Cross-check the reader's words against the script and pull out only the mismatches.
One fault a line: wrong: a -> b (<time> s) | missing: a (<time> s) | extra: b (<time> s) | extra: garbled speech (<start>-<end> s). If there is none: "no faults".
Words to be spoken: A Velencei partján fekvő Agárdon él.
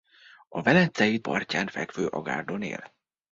no faults